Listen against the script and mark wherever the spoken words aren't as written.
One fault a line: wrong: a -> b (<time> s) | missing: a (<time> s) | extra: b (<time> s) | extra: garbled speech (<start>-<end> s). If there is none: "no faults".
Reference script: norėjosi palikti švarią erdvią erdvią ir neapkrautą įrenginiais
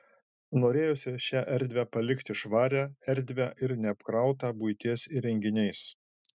extra: šią erdvę (1.2 s)
missing: erdvią (3.5 s)
extra: buities (4.6 s)